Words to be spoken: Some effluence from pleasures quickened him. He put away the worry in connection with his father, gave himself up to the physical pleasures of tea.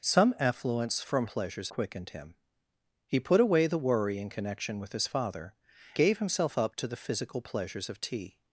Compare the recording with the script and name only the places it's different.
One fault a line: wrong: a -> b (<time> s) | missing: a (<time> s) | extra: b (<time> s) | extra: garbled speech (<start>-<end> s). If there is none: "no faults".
no faults